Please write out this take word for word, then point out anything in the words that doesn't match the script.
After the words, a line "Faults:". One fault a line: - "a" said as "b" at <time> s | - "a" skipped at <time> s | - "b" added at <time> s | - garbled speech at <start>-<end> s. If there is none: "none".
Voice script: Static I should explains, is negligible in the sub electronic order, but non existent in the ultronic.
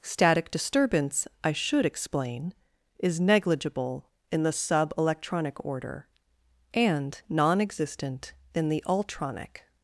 Static disturbance, I should explain, is negligible in the sub electronic order, and non existent in the ultronic.
Faults:
- "disturbance" added at 0.5 s
- "explains" said as "explain" at 1.9 s
- "but" said as "and" at 6.7 s